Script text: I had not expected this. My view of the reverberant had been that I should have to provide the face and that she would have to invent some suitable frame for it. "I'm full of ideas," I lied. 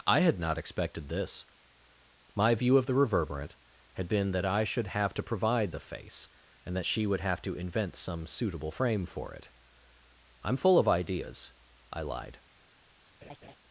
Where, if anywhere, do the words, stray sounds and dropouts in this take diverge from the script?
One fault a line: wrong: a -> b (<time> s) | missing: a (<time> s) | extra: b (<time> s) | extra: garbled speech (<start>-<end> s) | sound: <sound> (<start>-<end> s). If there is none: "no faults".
sound: laugh (13.2-13.5 s)